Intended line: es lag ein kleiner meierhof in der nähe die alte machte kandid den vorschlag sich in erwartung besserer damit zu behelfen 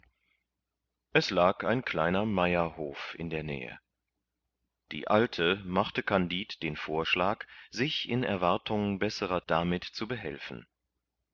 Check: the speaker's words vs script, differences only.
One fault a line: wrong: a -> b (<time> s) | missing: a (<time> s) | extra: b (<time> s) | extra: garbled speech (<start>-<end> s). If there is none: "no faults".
no faults